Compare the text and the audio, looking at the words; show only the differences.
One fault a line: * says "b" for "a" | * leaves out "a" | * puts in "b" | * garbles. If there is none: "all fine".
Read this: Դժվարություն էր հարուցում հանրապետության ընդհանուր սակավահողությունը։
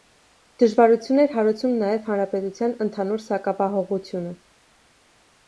* puts in "նաև"